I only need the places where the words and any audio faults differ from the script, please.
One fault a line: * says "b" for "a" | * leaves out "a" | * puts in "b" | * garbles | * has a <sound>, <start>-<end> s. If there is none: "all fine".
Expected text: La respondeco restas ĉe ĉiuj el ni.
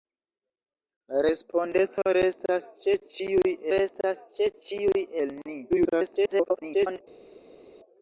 * puts in "restas ĉe ĉiuj"
* garbles